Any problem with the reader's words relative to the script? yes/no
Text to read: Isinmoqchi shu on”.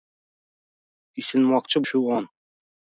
no